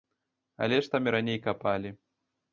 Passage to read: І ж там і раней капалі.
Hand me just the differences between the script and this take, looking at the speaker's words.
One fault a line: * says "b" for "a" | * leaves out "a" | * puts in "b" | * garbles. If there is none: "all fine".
* says "Але" for "І"